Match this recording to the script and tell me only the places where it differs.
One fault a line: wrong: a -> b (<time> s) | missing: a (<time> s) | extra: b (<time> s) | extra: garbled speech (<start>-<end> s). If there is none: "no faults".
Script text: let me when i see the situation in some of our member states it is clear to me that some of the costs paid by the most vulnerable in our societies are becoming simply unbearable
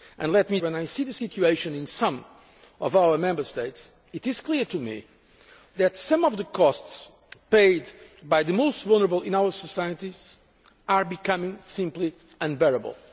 no faults